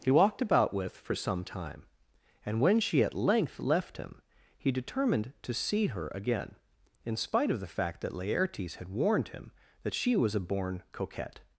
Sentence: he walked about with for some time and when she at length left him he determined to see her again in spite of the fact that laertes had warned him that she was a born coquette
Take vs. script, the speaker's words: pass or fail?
pass